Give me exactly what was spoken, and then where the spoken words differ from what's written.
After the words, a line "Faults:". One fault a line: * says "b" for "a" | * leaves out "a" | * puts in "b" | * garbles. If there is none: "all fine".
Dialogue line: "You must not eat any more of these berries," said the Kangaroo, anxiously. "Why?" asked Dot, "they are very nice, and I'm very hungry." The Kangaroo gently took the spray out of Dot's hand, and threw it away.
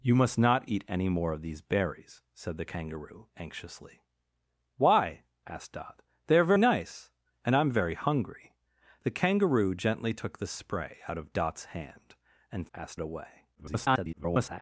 "You must not eat any more of these berries," said the Kangaroo, anxiously. "Why?" asked Dot, "they are nice, and I'm very hungry." The Kangaroo gently took the spray out of Dot's hand, and asked it away. [garbled]
Faults:
* leaves out "very"
* says "asked" for "threw"
* garbles